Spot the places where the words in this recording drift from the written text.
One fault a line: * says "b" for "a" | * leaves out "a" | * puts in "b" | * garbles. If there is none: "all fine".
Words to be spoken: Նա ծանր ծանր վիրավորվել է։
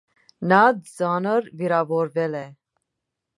* leaves out "ծանր"